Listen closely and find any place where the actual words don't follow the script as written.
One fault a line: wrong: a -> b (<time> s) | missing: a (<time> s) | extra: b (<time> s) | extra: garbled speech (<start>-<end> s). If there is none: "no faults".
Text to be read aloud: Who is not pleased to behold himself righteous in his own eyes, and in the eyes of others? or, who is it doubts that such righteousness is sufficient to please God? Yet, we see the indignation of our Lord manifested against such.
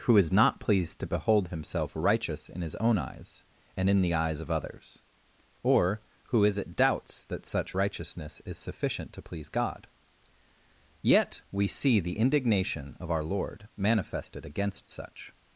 no faults